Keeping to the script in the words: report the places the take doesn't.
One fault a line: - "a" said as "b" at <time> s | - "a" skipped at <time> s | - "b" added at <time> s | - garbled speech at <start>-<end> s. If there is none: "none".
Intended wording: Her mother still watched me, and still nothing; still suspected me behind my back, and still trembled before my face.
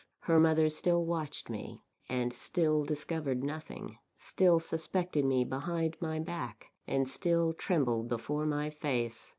- "discovered" added at 2.8 s